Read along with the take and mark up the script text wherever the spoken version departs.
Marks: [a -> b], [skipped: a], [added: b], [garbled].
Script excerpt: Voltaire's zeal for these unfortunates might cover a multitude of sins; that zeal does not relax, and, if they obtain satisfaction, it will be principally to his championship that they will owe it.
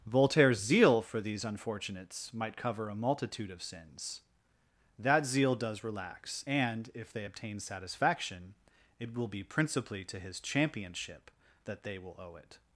Voltaire's zeal for these unfortunates might cover a multitude of sins; that zeal does [skipped: not] relax, and, if they obtain satisfaction, it will be principally to his championship that they will owe it.